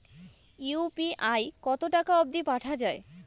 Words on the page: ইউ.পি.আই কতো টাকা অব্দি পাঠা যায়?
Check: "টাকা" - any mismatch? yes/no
no